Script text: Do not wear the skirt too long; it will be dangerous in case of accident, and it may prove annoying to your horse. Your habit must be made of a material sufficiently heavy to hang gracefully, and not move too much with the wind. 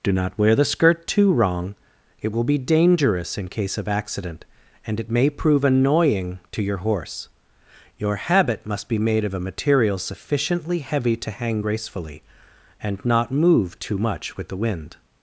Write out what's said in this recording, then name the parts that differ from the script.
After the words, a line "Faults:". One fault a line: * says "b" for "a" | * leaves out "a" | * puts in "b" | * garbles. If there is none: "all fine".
Do not wear the skirt too wrong; it will be dangerous in case of accident, and it may prove annoying to your horse. Your habit must be made of a material sufficiently heavy to hang gracefully, and not move too much with the wind.
Faults:
* says "wrong" for "long"